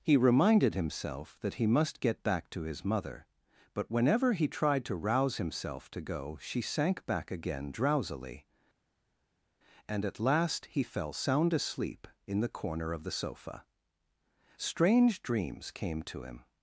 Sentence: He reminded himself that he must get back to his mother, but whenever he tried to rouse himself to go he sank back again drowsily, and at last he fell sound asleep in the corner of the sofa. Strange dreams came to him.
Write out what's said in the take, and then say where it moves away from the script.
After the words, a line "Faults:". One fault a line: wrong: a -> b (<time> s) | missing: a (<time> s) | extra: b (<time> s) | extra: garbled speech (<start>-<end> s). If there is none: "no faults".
He reminded himself that he must get back to his mother, but whenever he tried to rouse himself to go she sank back again drowsily, and at last he fell sound asleep in the corner of the sofa. Strange dreams came to him.
Faults:
wrong: he -> she (6.4 s)